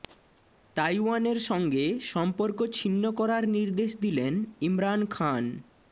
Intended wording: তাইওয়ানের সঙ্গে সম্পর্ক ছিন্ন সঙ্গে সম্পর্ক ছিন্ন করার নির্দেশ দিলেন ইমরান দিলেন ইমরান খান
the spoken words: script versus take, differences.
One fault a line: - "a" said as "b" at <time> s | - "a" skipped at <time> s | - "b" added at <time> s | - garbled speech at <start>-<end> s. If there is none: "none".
- "সঙ্গে সম্পর্ক ছিন্ন" skipped at 3.0 s
- "দিলেন ইমরান" skipped at 5.0 s